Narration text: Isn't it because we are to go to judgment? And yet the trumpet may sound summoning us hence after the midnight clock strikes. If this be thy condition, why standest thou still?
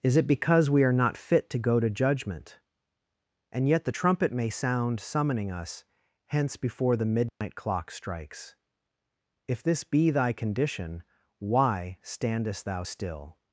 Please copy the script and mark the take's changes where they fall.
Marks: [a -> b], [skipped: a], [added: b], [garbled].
[Isn't -> Is] it because we are [added: not fit] to go to judgment? And yet the trumpet may sound summoning us hence [after -> before] the midnight clock strikes. If this be thy condition, why standest thou still?